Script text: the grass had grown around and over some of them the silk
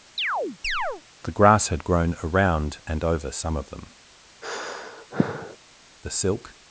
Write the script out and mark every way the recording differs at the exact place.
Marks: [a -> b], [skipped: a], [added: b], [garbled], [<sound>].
[chirp] the grass had grown around and over some of them [sigh] the silk